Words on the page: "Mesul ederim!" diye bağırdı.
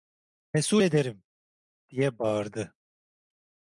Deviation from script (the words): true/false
false